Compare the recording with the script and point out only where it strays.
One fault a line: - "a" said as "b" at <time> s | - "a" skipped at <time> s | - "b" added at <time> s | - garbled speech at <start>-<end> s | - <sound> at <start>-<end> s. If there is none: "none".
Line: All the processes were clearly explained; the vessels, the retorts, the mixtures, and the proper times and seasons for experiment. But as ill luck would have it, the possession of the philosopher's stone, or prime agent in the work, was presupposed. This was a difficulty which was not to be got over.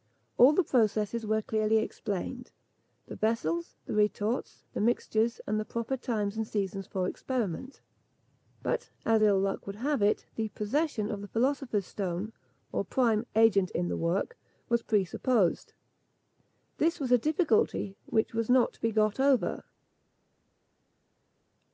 none